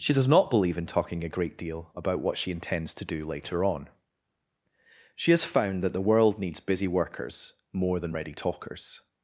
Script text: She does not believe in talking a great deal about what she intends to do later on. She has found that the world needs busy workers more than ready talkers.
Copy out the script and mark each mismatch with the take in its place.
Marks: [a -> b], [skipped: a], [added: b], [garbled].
She does not believe in talking a great deal about what she intends to do later on. She has found that the world needs busy workers more than ready talkers.